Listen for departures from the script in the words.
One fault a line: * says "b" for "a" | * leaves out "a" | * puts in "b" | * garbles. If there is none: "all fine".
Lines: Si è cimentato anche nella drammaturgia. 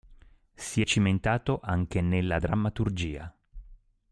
all fine